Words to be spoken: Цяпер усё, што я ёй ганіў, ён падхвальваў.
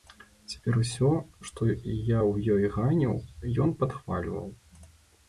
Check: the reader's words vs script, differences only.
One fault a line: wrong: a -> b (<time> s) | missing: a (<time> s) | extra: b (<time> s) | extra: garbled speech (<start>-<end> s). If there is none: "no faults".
extra: ў (2.2 s)